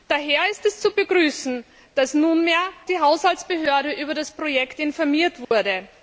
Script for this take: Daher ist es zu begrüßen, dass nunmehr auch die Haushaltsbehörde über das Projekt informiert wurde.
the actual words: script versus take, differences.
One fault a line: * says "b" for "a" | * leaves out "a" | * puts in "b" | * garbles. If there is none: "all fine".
* leaves out "auch"